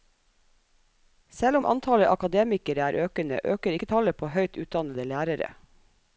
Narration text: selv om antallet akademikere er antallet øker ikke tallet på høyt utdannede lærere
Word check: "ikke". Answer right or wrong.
right